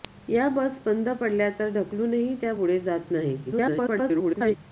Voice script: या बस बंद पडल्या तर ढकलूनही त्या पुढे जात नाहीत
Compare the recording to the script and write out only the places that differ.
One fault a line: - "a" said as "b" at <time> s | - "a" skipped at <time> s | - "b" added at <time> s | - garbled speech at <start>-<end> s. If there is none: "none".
- garbled speech at 3.5-4.6 s